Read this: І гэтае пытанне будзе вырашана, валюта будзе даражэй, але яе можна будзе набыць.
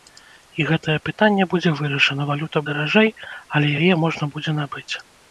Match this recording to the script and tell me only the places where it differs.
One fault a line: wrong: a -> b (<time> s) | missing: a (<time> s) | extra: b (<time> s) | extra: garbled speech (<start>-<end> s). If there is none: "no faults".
missing: будзе (2.6 s)